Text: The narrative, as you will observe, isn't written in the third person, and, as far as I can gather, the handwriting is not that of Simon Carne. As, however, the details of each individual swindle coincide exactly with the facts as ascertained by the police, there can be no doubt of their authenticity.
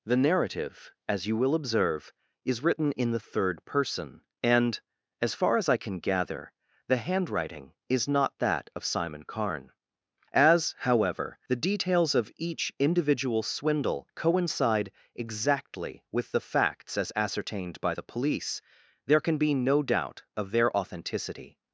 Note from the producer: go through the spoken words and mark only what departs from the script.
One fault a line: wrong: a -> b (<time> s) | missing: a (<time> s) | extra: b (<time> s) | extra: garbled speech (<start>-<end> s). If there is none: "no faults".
wrong: isn't -> is (2.4 s)